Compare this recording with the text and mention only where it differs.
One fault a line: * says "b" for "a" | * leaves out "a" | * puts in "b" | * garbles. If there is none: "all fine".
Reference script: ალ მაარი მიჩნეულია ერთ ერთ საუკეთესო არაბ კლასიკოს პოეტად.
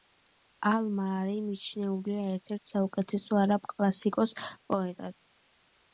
all fine